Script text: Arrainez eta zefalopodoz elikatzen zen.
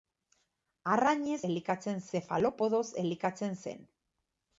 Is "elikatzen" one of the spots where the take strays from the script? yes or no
no